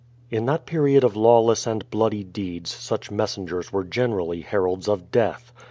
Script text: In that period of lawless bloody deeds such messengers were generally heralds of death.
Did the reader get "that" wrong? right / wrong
right